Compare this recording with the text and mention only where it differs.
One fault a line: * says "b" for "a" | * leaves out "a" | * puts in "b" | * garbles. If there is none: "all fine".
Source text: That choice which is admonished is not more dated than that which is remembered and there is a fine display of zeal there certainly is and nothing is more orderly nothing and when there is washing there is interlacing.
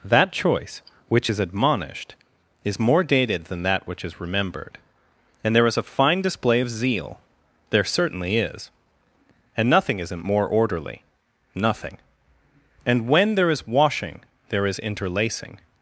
* leaves out "not"
* says "isn't" for "is"